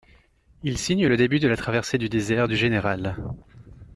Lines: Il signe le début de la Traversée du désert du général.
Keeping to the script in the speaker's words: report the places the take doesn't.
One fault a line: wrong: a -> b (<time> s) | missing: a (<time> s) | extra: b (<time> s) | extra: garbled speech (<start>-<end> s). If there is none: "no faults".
no faults